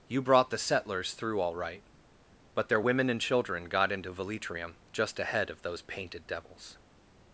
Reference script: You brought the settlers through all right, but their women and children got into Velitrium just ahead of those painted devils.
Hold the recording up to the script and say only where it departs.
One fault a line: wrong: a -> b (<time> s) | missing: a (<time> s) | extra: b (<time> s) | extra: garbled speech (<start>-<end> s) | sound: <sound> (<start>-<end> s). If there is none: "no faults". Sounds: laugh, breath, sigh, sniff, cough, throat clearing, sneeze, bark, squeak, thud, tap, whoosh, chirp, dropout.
no faults